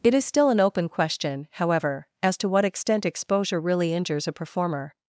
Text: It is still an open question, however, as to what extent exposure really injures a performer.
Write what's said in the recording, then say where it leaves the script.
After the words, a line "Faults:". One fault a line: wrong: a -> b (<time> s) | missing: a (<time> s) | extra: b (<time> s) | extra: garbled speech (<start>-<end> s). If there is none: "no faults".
It is still an open question, however, as to what extent exposure really injures a performer.
Faults:
no faults